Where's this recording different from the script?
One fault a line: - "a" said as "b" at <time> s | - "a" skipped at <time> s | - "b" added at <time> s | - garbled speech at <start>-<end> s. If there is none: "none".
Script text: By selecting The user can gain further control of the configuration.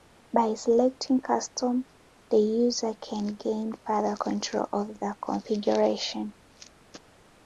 - "Custom" added at 1.2 s